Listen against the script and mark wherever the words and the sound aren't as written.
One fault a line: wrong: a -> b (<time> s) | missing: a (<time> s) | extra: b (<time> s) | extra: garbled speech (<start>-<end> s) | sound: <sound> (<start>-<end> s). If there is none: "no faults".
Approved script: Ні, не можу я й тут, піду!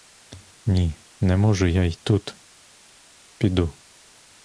no faults